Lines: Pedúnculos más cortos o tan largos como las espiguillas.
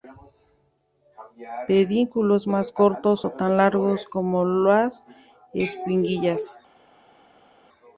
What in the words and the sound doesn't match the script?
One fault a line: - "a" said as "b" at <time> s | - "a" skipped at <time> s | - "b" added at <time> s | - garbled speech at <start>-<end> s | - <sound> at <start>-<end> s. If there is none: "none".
none